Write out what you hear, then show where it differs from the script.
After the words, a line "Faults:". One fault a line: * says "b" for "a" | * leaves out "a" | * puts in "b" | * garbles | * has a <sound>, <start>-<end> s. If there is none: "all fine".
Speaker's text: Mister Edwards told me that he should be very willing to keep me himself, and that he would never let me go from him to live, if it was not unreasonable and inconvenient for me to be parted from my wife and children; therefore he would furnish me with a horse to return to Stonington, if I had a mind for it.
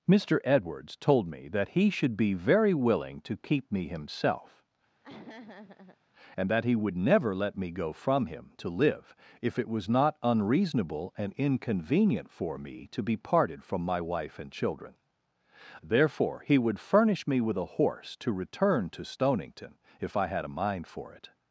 Mister Edwards told me that he should be very willing to keep me himself, and that he would never let me go from him to live, if it was not unreasonable and inconvenient for me to be parted from my wife and children; therefore he would furnish me with a horse to return to Stonington, if I had a mind for it.
Faults:
* has a laugh, 5.0-6.0 s